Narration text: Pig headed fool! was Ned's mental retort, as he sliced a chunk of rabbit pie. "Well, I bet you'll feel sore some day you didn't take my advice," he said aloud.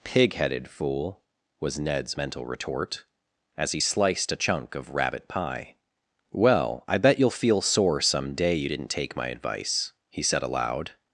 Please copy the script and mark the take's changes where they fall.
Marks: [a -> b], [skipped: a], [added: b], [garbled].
Pig headed fool! was Ned's mental retort, as he sliced a chunk of rabbit pie. "Well, I bet you'll feel sore some day you didn't take my advice," he said aloud.